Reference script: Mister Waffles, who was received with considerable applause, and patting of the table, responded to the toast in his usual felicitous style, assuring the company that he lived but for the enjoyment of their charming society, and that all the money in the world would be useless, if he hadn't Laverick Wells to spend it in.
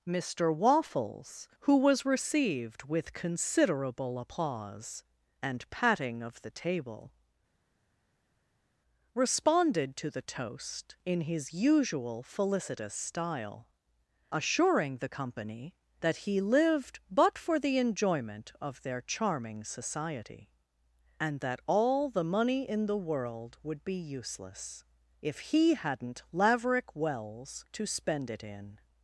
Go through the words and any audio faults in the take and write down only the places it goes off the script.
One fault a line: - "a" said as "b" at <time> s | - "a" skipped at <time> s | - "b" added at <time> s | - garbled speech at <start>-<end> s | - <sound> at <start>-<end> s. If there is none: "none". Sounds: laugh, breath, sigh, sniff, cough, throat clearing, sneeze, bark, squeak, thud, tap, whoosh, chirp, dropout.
none